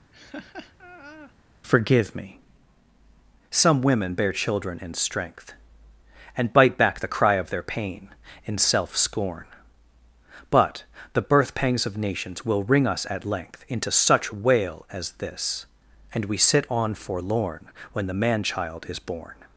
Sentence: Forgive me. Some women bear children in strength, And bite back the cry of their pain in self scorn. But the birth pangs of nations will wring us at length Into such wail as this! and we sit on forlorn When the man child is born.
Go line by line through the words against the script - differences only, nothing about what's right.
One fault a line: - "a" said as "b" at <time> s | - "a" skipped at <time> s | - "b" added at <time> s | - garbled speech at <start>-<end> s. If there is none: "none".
none